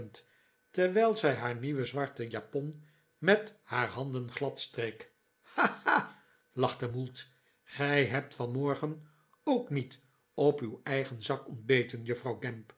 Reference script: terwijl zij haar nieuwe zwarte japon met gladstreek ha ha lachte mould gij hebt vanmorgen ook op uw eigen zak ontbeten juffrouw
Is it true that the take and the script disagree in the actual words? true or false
true